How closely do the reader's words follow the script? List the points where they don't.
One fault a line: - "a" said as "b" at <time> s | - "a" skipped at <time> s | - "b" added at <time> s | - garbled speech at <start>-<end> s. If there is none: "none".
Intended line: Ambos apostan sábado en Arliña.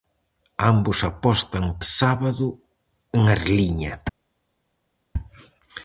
none